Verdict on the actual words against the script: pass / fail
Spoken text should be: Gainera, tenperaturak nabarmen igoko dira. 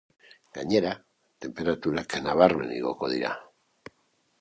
pass